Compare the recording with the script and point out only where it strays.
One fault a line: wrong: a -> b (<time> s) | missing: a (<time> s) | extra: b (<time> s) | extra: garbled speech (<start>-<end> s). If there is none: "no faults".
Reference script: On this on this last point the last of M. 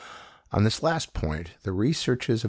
missing: on this (0.8 s)
wrong: last -> researches (1.7 s)